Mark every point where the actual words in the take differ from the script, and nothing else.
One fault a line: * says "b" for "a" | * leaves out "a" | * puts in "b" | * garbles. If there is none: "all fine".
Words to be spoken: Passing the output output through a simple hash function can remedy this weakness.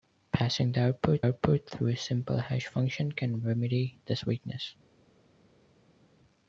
all fine